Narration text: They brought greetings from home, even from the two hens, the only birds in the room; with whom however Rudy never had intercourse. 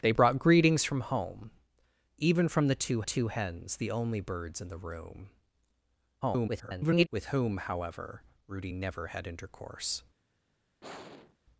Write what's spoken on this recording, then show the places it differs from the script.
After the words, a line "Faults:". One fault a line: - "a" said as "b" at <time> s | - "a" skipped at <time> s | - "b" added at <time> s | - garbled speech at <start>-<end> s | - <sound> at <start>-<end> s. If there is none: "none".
They brought greetings from home, even from the two two hens, the only birds in the room; [garbled] with whom however Rudy never had intercourse.
Faults:
- "two" added at 3.0 s
- garbled speech at 6.2-7.1 s
- sigh at 10.8-11.4 s